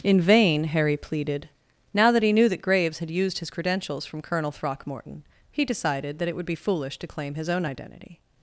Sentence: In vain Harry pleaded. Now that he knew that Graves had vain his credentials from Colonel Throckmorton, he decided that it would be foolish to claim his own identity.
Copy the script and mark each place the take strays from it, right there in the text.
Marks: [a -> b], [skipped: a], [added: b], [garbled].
In vain Harry pleaded. Now that he knew that Graves had [vain -> used] his credentials from Colonel Throckmorton, he decided that it would be foolish to claim his own identity.